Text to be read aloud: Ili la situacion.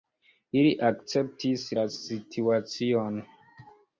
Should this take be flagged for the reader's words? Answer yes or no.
yes